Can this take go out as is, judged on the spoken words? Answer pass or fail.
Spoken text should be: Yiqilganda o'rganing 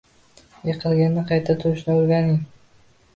fail